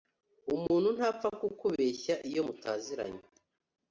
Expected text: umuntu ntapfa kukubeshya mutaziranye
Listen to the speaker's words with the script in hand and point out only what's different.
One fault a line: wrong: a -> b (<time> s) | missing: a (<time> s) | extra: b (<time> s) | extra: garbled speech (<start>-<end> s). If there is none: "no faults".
extra: iyo (2.3 s)